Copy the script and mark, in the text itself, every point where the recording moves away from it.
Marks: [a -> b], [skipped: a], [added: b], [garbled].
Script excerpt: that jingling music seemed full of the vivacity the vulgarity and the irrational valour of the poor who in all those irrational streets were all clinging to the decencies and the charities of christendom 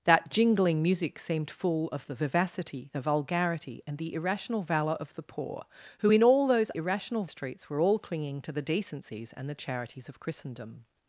that jingling music seemed full of the vivacity the vulgarity and the irrational valour of the poor who in all those irrational streets were all clinging to the decencies and the charities of christendom